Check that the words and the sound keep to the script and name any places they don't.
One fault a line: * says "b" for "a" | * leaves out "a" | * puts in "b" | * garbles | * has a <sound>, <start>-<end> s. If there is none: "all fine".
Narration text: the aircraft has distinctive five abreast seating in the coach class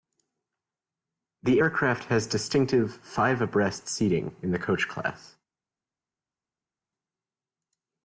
all fine